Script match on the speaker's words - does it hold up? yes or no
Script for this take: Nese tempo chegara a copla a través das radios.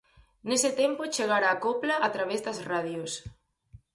yes